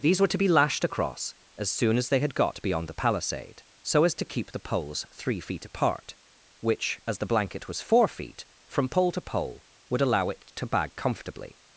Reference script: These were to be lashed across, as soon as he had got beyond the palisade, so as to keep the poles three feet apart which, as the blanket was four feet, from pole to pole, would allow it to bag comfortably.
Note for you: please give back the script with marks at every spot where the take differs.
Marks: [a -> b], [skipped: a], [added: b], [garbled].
These were to be lashed across, as soon as [he -> they] had got beyond the palisade, so as to keep the poles three feet apart which, as the blanket was four feet, from pole to pole, would allow it to bag comfortably.